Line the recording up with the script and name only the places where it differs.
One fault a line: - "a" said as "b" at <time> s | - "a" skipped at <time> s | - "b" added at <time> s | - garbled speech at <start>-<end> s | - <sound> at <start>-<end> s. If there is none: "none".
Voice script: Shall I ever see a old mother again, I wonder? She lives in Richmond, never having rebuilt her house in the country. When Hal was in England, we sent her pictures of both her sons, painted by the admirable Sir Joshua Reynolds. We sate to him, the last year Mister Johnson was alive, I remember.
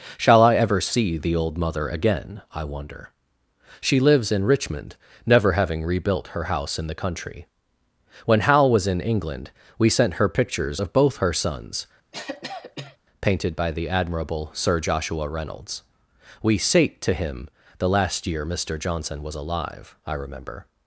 - "a" said as "the" at 1.2 s
- cough at 12.1-13.0 s